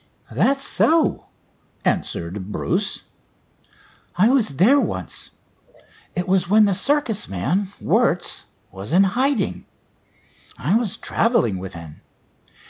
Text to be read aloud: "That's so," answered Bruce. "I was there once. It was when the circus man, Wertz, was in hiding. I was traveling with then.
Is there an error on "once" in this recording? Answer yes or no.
no